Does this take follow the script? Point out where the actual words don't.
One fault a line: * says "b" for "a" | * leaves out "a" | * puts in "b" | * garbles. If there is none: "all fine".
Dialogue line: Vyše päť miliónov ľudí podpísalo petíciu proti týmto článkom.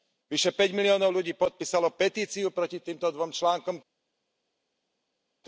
* puts in "dvom"